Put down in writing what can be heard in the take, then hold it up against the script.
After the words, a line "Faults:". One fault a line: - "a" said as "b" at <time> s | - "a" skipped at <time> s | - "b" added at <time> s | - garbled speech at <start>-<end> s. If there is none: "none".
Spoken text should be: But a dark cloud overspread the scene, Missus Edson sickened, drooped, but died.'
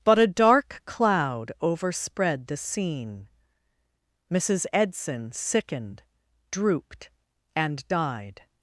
But a dark cloud overspread the scene, Missus Edson sickened, drooped, and died.'
Faults:
- "but" said as "and" at 7.5 s